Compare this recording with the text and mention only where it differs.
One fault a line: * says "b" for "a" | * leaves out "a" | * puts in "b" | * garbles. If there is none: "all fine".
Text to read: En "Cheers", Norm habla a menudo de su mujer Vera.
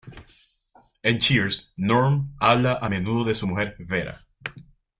all fine